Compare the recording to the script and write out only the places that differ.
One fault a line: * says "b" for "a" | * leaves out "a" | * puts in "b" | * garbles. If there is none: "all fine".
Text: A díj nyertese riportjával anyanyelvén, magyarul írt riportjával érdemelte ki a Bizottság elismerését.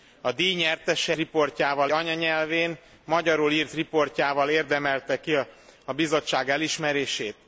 all fine